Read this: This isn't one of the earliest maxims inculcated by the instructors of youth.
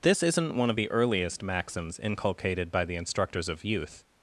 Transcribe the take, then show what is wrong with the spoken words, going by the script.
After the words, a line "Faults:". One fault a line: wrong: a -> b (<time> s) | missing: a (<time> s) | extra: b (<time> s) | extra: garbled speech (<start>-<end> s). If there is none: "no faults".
This isn't one of the earliest maxims inculcated by the instructors of youth.
Faults:
no faults